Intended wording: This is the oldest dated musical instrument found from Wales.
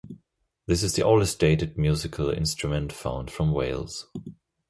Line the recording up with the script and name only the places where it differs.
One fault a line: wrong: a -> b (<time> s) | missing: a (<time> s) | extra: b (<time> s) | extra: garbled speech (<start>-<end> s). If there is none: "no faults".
no faults